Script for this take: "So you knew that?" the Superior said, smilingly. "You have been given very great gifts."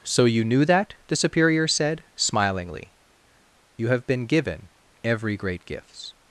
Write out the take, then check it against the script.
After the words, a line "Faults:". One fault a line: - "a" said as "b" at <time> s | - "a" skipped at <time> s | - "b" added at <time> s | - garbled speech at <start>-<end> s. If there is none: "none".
"So you knew that?" the Superior said, smilingly. "You have been given every great gifts."
Faults:
- "very" said as "every" at 5.0 s